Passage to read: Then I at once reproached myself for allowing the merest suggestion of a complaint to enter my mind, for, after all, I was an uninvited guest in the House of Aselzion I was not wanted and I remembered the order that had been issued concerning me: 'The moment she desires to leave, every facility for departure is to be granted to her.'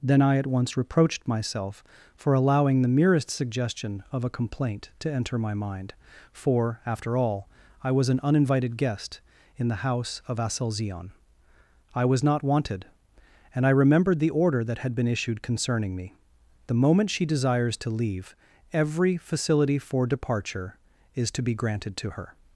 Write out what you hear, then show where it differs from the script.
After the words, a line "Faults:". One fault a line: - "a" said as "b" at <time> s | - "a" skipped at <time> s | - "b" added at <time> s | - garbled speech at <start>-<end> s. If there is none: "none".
Then I at once reproached myself for allowing the merest suggestion of a complaint to enter my mind, for, after all, I was an uninvited guest in the House of Aselzion I was not wanted and I remembered the order that had been issued concerning me: 'The moment she desires to leave, every facility for departure is to be granted to her.'
Faults:
none